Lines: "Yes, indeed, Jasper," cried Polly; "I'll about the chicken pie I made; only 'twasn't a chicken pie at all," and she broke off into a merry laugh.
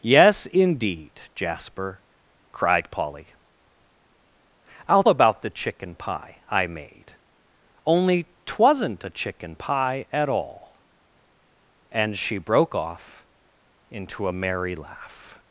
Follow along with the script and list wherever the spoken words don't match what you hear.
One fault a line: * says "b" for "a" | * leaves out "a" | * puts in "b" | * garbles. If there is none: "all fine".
all fine